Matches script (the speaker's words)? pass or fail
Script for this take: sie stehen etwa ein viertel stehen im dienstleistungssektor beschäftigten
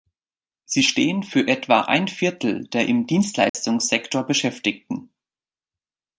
fail